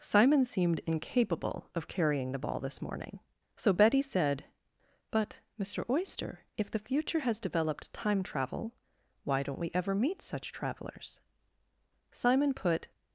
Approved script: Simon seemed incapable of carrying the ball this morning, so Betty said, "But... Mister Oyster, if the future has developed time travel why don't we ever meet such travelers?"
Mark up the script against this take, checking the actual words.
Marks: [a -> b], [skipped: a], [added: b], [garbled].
Simon seemed incapable of carrying the ball this morning, so Betty said, "But... Mister Oyster, if the future has developed time travel why don't we ever meet such travelers?" [added: Simon put]